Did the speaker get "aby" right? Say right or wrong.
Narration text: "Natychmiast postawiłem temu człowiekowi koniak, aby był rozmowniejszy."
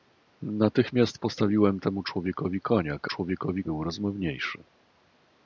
wrong